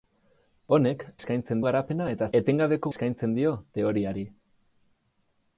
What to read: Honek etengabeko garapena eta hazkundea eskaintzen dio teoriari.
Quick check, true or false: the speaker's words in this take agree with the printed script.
false